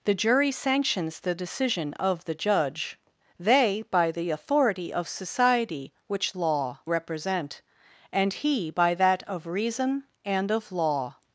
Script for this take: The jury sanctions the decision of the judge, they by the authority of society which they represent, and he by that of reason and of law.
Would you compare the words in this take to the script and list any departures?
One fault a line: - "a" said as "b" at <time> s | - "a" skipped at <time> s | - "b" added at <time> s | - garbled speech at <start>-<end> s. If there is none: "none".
- "they" said as "law" at 6.3 s